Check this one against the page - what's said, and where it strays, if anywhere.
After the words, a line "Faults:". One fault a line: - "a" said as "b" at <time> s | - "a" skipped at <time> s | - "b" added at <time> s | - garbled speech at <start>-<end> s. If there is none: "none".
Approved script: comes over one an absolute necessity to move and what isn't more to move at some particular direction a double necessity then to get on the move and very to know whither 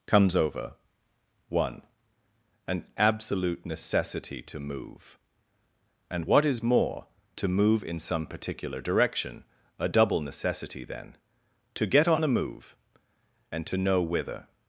comes over one an absolute necessity to move and what is more to move in some particular direction a double necessity then to get on the move and to know whither
Faults:
- "isn't" said as "is" at 6.4 s
- "at" said as "in" at 7.8 s
- "very" skipped at 13.7 s